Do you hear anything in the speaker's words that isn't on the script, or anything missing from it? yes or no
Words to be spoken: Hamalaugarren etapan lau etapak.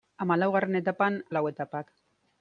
no